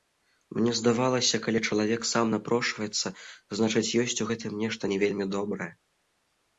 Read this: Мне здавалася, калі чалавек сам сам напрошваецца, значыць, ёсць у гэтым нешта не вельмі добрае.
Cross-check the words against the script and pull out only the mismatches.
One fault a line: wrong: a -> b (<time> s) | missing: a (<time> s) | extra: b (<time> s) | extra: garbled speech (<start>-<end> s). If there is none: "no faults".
missing: сам (2.3 s)